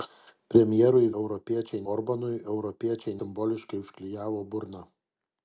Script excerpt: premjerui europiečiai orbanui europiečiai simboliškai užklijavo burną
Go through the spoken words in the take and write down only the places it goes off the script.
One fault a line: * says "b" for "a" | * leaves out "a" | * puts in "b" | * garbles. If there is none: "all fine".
all fine